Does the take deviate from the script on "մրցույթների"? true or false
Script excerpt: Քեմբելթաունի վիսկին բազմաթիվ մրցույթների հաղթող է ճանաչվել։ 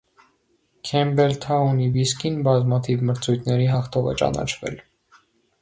false